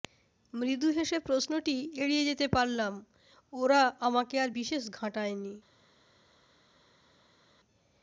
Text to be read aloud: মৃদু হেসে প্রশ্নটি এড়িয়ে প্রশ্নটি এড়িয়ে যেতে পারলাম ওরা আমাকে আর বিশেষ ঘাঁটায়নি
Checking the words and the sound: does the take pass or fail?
fail